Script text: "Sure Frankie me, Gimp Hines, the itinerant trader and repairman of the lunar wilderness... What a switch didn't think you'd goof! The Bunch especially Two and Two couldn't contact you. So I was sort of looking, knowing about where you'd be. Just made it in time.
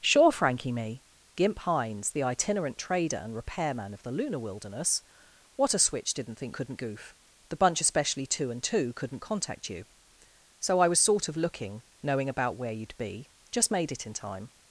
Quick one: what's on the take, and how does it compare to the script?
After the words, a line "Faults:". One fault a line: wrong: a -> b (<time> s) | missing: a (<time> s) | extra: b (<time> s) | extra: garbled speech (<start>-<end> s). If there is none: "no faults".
"Sure Frankie me, Gimp Hines, the itinerant trader and repairman of the lunar wilderness... What a switch didn't think couldn't goof! The Bunch especially Two and Two couldn't contact you. So I was sort of looking, knowing about where you'd be. Just made it in time.
Faults:
wrong: you'd -> couldn't (6.5 s)